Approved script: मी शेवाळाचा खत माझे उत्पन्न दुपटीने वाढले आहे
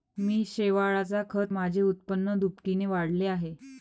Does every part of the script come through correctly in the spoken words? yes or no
yes